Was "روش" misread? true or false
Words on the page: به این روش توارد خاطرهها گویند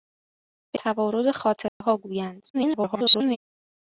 true